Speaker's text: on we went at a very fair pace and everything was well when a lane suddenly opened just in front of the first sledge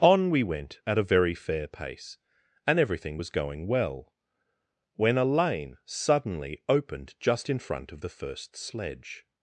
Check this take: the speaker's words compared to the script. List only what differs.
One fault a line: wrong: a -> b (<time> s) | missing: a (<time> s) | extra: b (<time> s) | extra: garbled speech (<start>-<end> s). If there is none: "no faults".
extra: going (3.3 s)